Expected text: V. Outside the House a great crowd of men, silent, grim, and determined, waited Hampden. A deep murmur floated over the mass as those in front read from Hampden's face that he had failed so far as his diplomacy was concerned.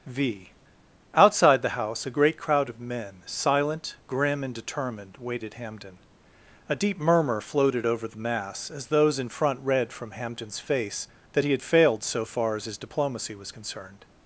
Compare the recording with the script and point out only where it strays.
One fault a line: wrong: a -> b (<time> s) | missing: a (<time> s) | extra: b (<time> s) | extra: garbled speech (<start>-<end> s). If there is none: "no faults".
no faults